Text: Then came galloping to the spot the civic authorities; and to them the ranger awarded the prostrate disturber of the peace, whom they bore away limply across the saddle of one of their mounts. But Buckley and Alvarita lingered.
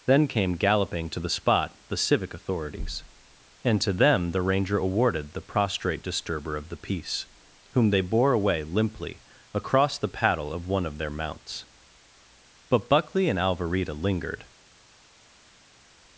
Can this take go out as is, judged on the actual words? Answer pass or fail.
fail